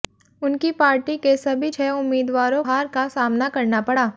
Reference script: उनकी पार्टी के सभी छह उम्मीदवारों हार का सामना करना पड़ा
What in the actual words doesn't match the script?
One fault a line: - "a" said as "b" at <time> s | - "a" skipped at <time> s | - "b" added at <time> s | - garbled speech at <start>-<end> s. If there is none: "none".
none